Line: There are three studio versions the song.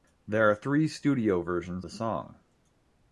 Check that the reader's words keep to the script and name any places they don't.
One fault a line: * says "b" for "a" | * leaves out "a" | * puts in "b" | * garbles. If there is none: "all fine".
all fine